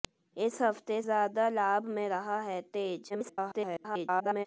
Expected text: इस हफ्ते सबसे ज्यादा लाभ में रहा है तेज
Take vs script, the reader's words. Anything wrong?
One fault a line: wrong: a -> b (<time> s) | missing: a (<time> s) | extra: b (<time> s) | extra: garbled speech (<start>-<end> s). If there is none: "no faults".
missing: सबसे (1.0 s)
extra: garbled speech (3.1-4.5 s)